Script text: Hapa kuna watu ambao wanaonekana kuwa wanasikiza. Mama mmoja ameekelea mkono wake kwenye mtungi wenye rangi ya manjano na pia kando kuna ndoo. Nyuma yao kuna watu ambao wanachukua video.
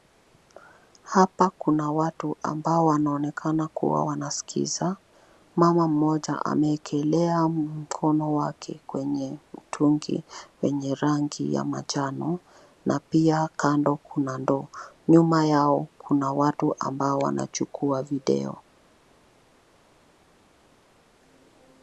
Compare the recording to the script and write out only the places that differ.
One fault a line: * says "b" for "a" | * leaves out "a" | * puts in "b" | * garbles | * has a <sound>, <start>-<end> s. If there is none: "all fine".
all fine